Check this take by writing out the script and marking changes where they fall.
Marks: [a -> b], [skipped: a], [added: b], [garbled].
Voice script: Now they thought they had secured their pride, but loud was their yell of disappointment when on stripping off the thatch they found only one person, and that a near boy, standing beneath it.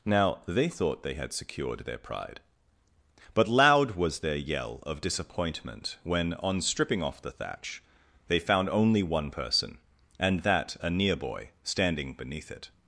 Now they thought they had secured their pride, but loud was their yell of disappointment when on stripping off the thatch they found only one person, and that a near boy, standing beneath it.